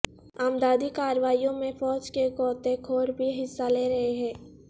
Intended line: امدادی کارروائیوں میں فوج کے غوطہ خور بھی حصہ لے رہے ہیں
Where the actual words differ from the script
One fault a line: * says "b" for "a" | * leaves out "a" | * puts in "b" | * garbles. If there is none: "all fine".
all fine